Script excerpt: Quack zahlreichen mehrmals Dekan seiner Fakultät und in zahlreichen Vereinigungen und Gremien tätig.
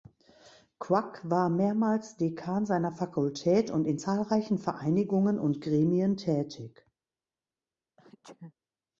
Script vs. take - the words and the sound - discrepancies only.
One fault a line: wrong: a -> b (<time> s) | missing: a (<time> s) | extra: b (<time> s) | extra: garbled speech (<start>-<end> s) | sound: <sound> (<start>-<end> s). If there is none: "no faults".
wrong: zahlreichen -> war (1.3 s)
sound: sneeze (8.0-8.5 s)